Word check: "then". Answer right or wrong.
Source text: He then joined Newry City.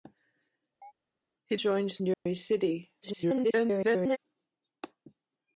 wrong